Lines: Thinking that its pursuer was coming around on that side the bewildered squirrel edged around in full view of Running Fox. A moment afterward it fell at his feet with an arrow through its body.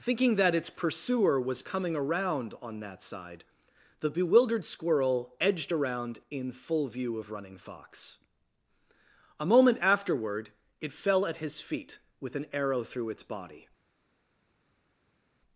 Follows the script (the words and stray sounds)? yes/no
yes